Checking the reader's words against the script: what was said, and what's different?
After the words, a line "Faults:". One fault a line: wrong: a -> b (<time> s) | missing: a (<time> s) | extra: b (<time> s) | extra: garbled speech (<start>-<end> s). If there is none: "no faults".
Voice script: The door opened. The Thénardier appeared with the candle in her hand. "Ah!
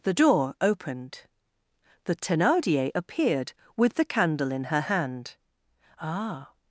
The door opened. The Thénardier appeared with the candle in her hand. "Ah!
Faults:
no faults